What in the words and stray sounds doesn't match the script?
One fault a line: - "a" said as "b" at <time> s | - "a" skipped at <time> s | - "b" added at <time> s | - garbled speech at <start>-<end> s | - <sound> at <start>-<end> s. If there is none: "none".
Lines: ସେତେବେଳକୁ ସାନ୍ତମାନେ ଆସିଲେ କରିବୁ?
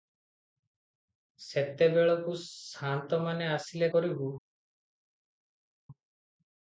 none